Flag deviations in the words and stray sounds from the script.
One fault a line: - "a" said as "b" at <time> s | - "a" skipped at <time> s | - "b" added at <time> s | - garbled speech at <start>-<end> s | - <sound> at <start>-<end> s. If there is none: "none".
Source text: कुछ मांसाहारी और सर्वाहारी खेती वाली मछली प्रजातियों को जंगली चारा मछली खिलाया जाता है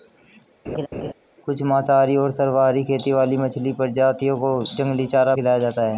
- laugh at 0.7-1.1 s
- "मछली" skipped at 5.3 s